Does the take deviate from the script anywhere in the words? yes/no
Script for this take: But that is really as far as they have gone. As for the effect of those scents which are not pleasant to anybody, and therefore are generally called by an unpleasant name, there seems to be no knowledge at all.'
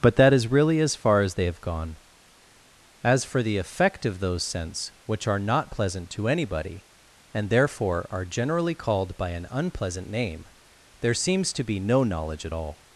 no